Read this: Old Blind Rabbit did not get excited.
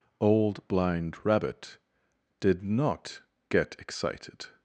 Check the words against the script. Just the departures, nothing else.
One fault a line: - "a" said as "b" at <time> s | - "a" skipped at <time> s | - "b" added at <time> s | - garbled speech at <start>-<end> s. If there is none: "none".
none